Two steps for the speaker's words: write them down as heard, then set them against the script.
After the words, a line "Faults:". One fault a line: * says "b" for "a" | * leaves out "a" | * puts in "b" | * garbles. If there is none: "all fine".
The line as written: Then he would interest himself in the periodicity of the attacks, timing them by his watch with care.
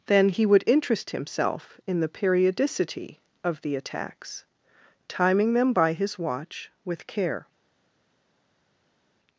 Then he would interest himself in the periodicity of the attacks, timing them by his watch with care.
Faults:
all fine